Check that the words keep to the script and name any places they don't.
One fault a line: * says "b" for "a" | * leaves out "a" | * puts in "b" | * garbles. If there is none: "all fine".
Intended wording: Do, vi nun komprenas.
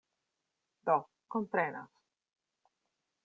* leaves out "vi nun"